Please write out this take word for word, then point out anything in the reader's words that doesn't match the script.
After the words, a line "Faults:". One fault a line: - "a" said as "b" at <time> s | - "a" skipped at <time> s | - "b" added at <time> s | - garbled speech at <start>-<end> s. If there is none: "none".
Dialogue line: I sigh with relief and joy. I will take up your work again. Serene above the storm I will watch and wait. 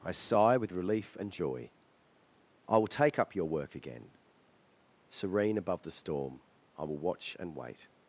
I sigh with relief and joy. I will take up your work again. Serene above the storm I will watch and wait.
Faults:
none